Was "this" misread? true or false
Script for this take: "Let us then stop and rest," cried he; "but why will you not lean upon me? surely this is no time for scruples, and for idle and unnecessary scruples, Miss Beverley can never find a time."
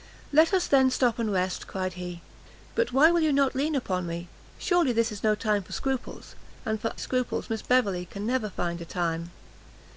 false